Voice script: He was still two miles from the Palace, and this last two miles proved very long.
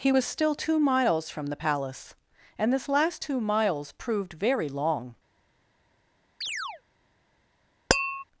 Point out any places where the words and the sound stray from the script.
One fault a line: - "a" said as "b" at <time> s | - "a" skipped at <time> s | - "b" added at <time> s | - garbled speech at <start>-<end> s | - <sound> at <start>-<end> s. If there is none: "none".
- chirp at 6.4-6.8 s
- tap at 7.9-8.2 s